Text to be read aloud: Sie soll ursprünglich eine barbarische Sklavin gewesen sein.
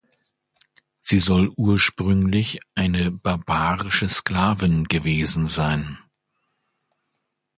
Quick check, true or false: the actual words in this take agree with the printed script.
true